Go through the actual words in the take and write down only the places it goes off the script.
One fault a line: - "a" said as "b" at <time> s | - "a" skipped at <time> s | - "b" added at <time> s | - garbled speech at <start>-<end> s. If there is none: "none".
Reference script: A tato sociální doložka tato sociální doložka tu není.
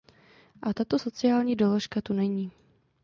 - "tato sociální doložka" skipped at 2.0 s